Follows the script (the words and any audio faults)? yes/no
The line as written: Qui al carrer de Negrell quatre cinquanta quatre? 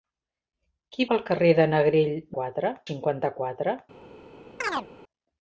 no